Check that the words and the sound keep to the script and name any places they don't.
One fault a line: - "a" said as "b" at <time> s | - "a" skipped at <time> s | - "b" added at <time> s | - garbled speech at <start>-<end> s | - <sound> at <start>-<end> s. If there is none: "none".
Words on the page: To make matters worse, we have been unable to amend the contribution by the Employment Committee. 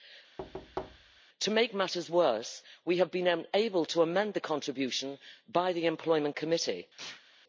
- thud at 0.4-1.2 s
- sneeze at 7.0-7.3 s